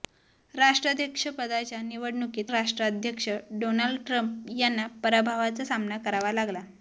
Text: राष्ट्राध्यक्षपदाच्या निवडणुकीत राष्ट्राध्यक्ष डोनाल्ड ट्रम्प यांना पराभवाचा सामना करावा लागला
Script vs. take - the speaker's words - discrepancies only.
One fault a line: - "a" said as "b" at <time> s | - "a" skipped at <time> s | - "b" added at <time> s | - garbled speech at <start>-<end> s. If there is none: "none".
none